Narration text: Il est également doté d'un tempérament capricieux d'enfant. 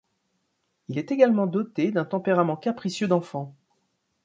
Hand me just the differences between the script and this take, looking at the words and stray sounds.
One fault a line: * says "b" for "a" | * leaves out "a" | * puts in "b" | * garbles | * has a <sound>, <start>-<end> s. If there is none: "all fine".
all fine